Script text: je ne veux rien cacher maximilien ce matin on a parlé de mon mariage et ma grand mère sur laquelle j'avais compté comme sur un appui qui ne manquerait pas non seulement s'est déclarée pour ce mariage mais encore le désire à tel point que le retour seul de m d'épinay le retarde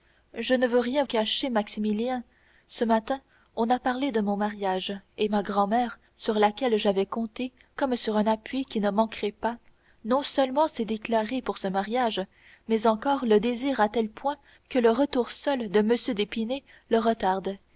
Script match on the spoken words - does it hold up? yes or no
yes